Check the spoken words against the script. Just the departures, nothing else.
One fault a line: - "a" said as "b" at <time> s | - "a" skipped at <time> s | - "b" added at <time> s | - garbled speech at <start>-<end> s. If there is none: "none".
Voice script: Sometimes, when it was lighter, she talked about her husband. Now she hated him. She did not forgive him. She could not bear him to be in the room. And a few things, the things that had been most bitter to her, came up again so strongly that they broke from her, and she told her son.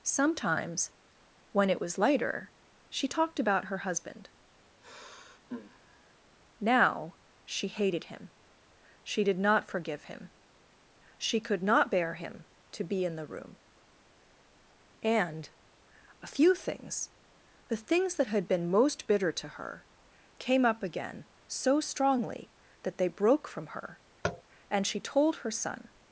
none